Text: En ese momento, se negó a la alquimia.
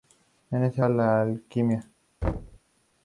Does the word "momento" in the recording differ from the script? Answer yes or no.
yes